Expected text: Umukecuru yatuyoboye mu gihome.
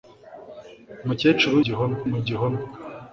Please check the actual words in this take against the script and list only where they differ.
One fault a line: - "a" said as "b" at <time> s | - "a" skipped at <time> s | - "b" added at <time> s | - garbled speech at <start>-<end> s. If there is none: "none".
- "yatuyoboye" said as "gihome" at 1.6 s